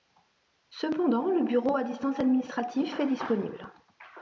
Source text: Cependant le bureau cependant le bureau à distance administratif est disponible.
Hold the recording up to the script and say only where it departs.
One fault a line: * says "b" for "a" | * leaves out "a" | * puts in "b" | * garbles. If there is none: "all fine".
* leaves out "cependant le bureau"